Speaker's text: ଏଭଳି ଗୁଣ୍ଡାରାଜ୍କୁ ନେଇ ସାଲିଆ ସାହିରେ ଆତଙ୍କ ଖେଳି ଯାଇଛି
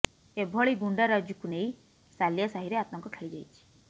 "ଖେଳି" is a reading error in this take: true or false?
false